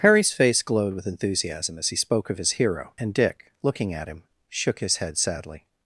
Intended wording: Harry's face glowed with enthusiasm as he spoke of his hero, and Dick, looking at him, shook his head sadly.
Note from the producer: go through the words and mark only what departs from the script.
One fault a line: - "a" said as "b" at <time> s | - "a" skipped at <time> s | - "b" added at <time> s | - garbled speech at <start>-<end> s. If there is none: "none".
none